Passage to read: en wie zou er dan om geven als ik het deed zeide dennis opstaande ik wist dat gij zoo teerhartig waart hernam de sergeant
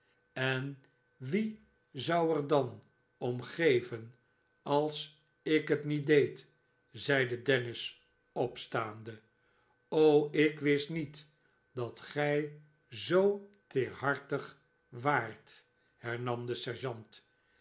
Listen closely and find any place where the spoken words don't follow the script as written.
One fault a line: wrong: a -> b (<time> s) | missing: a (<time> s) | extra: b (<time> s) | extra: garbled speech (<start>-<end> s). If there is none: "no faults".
extra: niet (5.8 s)
extra: niet (10.9 s)